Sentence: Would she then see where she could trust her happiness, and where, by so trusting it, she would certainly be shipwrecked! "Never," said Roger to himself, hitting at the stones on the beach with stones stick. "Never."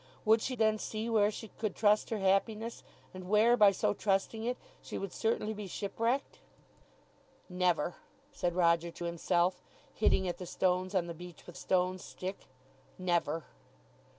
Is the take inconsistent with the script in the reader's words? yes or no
no